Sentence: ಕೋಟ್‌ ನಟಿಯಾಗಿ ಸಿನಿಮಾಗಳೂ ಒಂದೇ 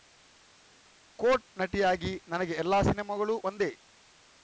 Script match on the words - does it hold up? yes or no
no